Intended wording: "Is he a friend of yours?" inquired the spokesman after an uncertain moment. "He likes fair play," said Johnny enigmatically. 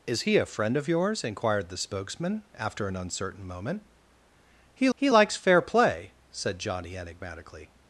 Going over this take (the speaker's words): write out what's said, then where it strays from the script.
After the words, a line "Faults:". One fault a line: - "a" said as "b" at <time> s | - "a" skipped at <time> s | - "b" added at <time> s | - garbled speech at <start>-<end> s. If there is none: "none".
"Is he a friend of yours?" inquired the spokesman after an uncertain moment. "He he likes fair play," said Johnny enigmatically.
Faults:
- "he" added at 4.9 s